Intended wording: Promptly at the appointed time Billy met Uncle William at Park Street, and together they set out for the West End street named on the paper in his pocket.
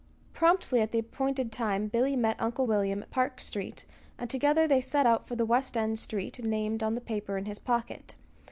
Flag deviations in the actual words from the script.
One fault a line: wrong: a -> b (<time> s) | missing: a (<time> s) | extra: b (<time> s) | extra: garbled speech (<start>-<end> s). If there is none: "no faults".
no faults